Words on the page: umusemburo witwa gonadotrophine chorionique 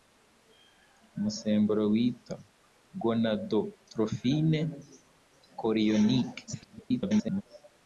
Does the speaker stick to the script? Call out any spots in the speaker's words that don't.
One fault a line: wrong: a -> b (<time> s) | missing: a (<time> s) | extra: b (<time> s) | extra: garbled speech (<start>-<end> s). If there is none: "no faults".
extra: garbled speech (6.5-7.4 s)